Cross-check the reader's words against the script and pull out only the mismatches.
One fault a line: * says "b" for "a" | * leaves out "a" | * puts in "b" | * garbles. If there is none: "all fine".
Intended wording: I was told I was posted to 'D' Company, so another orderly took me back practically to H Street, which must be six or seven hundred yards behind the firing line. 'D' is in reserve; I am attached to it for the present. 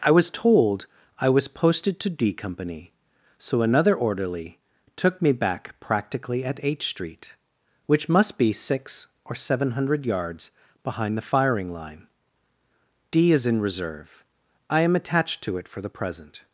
* says "at" for "to"